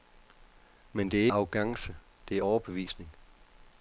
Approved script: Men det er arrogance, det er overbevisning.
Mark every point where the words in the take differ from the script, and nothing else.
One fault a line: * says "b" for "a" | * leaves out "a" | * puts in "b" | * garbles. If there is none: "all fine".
all fine